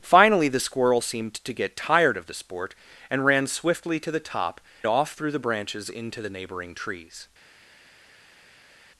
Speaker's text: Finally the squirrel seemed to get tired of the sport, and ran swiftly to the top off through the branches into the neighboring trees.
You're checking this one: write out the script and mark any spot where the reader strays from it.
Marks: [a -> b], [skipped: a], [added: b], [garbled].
Finally the squirrel seemed to get tired of the sport, and ran swiftly to the top off through the branches into the neighboring trees.